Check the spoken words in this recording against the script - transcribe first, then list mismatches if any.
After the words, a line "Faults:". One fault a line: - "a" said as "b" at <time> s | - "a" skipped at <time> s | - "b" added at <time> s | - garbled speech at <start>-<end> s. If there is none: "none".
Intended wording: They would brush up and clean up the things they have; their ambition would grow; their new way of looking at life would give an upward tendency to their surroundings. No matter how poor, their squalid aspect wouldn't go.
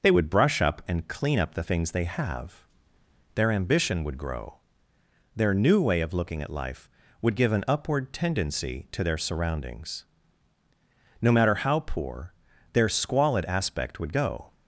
They would brush up and clean up the things they have; their ambition would grow; their new way of looking at life would give an upward tendency to their surroundings. No matter how poor, their squalid aspect would go.
Faults:
- "wouldn't" said as "would" at 14.0 s